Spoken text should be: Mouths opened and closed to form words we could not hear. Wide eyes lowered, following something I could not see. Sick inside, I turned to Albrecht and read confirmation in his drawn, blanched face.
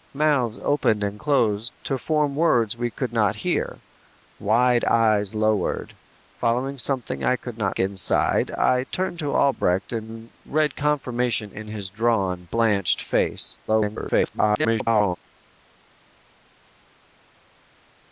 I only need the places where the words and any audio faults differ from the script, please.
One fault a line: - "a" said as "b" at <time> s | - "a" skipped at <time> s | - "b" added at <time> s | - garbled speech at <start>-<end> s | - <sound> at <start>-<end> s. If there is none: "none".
- "see Sick" skipped at 7.8 s
- garbled speech at 13.7-15.2 s